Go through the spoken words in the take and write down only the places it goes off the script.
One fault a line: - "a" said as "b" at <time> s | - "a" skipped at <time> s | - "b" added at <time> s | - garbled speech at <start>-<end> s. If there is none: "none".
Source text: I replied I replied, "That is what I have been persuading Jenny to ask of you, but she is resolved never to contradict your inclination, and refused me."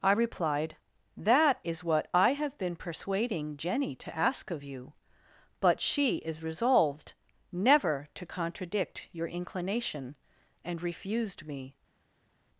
- "I replied" skipped at 0.8 s